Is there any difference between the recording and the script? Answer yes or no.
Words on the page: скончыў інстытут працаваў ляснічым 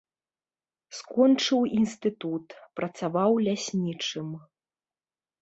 no